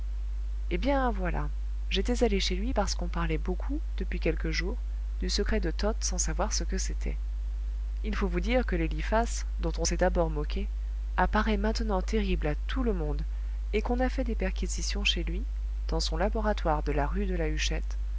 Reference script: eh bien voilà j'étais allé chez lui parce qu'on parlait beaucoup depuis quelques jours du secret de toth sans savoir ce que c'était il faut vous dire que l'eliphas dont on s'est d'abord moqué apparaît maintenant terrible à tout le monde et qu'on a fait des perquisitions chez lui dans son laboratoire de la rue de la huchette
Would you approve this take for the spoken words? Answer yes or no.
yes